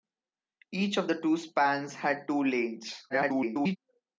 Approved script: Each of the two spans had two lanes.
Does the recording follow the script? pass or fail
fail